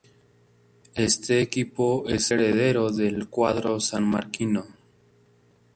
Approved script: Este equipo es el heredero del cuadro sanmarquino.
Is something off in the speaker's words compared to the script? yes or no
yes